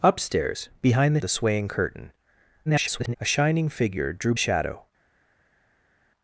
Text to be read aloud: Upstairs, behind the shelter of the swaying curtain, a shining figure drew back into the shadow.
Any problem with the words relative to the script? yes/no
yes